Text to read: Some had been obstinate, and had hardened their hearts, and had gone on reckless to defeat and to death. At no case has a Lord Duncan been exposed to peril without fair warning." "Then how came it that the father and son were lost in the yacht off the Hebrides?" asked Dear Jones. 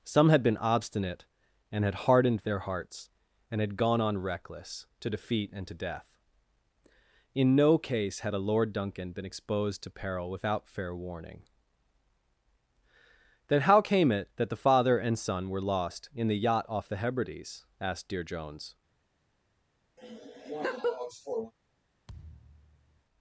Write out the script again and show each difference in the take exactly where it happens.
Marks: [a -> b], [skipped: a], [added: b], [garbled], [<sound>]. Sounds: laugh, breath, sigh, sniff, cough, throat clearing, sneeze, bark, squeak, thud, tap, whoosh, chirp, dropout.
Some had been obstinate, and had hardened their hearts, and had gone on reckless to defeat and to death. [At -> In] no case [has -> had] a Lord Duncan been exposed to peril without fair warning." "Then how came it that the father and son were lost in the yacht off the Hebrides?" asked Dear Jones. [laugh] [thud]